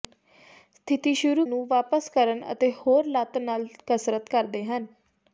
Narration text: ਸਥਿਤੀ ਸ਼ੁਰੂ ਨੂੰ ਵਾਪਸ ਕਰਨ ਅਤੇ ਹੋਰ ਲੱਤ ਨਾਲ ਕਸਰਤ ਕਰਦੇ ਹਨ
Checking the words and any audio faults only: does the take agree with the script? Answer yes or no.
yes